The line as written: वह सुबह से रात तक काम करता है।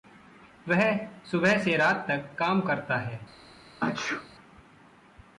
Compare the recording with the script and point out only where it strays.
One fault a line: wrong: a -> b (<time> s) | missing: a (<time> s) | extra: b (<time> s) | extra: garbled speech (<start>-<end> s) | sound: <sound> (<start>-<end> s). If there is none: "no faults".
sound: sneeze (3.8-4.3 s)